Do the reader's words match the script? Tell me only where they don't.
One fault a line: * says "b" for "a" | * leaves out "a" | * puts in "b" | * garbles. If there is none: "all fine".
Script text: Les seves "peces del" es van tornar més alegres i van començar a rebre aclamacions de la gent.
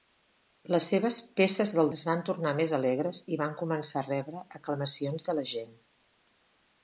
all fine